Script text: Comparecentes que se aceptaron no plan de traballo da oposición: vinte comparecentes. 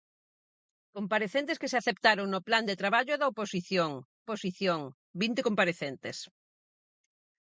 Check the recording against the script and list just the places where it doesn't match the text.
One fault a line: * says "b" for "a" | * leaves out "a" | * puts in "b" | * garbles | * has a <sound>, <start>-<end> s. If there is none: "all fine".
* puts in "oposición"